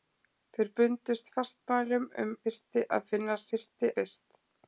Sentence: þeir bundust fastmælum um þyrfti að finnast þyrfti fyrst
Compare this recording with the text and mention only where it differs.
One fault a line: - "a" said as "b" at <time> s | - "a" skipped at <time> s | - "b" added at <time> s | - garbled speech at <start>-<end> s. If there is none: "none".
none